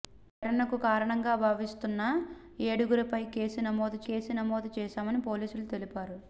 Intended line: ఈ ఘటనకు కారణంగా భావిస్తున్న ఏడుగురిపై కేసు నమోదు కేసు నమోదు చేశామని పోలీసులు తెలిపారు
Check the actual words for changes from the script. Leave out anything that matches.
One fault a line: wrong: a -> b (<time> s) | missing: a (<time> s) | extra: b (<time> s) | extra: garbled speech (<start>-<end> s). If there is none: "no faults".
no faults